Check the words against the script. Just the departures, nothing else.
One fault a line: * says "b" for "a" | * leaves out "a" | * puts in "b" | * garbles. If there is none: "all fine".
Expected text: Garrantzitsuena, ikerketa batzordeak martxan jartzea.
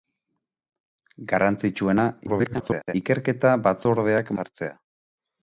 * garbles
* leaves out "martxan"